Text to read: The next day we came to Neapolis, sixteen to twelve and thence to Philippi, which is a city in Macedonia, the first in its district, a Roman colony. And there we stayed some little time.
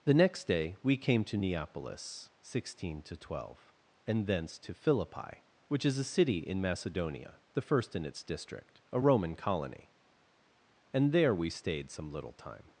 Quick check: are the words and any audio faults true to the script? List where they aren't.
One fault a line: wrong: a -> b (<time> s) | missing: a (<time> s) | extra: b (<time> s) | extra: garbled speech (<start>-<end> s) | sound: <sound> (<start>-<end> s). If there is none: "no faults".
no faults